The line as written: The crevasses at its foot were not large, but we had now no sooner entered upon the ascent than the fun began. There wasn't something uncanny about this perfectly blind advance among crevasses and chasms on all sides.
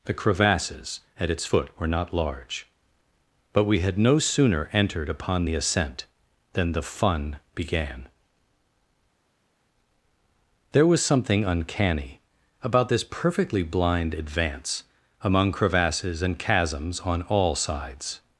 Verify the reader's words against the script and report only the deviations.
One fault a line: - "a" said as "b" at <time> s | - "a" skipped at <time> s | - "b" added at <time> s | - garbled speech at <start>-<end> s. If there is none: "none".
- "now" skipped at 4.0 s
- "wasn't" said as "was" at 10.9 s